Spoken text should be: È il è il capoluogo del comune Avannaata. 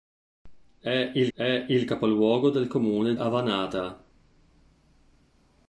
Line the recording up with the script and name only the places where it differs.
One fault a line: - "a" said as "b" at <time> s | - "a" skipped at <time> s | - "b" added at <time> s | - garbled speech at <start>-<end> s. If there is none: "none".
none